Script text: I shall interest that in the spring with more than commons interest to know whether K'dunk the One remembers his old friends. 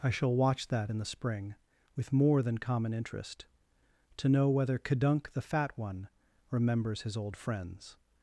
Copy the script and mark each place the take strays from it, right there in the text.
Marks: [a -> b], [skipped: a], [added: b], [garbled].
I shall [interest -> watch] that in the spring with more than [commons -> common] interest to know whether K'dunk the [added: Fat] One remembers his old friends.